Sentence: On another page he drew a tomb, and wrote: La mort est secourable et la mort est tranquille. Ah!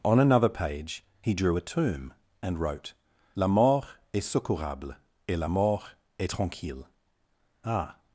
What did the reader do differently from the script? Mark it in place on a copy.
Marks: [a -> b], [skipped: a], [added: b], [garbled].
On another page he drew a tomb, and wrote: La mort est secourable et la mort est tranquille. Ah!